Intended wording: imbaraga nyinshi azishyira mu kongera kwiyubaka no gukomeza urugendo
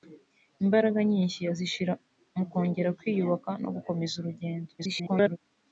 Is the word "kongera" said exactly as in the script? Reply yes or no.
yes